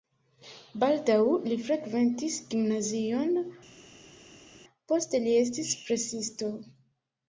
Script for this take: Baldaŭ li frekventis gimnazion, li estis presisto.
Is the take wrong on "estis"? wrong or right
right